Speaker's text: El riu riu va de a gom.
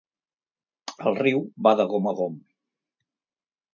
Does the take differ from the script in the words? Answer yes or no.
yes